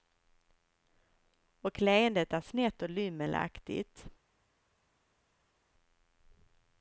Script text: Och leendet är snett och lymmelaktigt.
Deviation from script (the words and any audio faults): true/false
false